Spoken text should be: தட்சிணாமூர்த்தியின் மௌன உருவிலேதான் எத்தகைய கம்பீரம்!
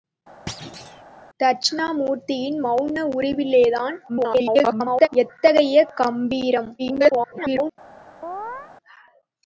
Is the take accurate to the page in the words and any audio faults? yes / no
no